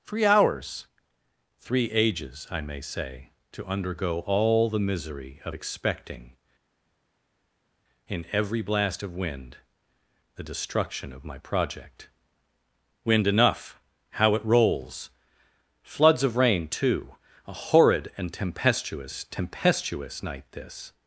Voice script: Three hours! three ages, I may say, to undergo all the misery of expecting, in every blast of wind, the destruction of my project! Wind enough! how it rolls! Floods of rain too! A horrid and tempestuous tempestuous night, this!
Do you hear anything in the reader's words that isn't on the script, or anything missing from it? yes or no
no